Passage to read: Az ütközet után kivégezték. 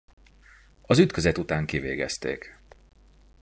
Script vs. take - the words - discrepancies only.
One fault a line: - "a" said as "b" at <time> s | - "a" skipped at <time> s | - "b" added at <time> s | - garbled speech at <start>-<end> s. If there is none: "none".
none